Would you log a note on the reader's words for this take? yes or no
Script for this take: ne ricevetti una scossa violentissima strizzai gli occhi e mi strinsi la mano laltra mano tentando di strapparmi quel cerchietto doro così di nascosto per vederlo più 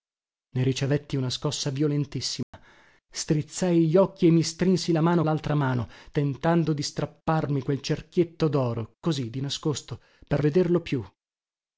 no